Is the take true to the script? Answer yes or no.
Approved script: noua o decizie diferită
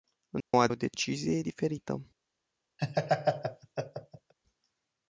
yes